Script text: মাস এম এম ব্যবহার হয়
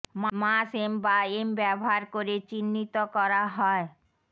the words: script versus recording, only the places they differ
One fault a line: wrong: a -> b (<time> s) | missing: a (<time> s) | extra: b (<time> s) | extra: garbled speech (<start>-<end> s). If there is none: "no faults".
extra: বা (1.1 s)
extra: করে চিহ্নিত করা (2.1 s)